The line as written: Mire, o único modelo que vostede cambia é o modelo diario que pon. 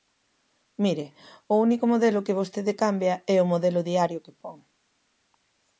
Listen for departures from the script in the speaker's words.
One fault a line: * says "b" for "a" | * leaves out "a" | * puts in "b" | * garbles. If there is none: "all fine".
all fine